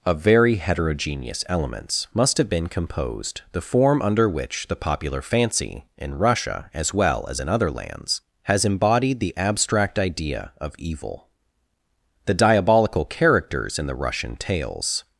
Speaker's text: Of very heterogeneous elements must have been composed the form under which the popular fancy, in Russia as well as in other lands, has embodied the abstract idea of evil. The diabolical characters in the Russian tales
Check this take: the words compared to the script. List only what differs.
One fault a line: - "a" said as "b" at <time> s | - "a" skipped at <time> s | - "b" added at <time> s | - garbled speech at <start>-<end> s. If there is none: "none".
none